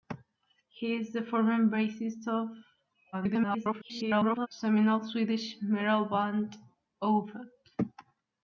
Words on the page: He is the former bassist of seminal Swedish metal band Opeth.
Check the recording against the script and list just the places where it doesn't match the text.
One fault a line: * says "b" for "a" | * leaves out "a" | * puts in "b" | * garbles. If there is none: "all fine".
* garbles